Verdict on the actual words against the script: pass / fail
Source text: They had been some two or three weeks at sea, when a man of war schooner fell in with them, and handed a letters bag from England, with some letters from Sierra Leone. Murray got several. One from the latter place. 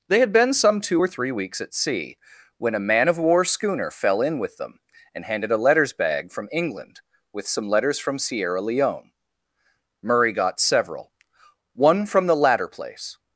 pass